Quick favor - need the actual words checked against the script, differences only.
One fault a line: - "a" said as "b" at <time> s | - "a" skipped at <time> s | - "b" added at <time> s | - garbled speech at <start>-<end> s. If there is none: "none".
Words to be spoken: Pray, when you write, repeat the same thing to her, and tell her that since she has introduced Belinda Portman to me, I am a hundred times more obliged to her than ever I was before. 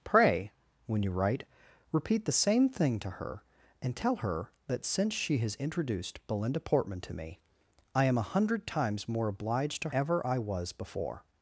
- "her than" skipped at 9.9 s